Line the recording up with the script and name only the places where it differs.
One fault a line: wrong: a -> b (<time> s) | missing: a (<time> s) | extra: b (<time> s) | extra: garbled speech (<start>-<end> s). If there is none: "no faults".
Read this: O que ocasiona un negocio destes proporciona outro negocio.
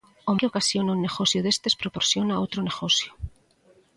no faults